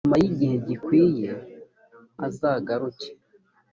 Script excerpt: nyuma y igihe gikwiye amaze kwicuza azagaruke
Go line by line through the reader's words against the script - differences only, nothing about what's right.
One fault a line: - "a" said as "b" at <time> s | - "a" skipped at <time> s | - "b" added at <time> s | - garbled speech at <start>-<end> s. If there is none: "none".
- "amaze kwicuza" skipped at 1.3 s